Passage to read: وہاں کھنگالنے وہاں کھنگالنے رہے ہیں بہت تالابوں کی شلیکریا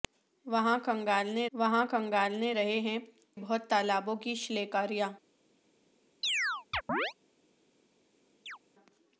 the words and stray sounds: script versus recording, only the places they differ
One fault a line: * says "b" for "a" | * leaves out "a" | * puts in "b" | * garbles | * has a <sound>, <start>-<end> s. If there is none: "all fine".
* has a chirp, 6.2-7.1 s
* has a chirp, 8.5-8.6 s